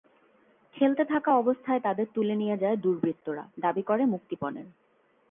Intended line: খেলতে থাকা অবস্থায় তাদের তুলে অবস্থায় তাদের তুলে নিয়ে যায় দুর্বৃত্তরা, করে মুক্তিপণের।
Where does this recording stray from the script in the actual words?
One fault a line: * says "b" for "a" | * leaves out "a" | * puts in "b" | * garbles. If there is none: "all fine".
* leaves out "অবস্থায় তাদের তুলে"
* puts in "দাবি"